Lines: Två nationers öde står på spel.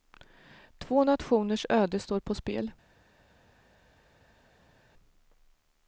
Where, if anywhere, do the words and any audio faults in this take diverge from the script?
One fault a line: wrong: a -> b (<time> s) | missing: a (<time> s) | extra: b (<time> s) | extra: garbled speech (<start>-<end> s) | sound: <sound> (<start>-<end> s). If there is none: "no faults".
no faults